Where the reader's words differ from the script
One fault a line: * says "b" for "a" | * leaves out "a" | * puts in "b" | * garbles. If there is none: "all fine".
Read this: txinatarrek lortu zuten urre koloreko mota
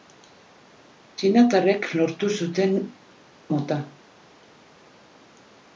* leaves out "urre koloreko"